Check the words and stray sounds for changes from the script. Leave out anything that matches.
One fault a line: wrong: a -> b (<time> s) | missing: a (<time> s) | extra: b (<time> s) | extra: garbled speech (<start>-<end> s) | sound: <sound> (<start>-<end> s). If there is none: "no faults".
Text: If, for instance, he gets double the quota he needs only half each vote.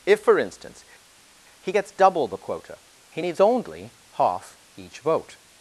no faults